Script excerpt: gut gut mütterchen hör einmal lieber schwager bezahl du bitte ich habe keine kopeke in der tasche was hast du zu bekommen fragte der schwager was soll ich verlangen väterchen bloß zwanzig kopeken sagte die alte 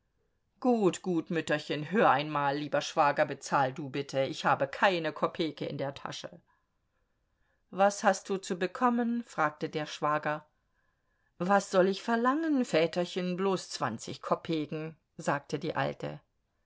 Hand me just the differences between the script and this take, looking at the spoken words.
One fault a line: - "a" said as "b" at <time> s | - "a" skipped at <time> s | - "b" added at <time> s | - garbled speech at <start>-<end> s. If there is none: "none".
none